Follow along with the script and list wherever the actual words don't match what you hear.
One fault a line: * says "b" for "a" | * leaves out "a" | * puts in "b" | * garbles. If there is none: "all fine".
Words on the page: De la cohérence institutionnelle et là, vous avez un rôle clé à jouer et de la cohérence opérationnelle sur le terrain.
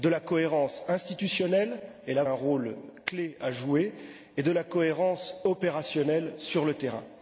* leaves out "vous avez"